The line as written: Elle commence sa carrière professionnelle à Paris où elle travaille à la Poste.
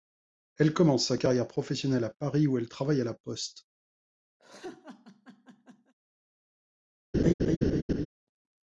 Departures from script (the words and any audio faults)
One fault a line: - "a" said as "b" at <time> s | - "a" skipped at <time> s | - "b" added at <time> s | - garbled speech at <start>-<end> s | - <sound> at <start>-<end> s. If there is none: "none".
- laugh at 4.4-5.9 s
- laugh at 7.1-8.1 s